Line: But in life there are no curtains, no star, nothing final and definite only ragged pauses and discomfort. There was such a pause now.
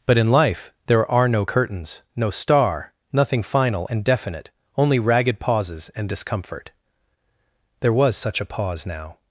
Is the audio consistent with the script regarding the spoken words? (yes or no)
yes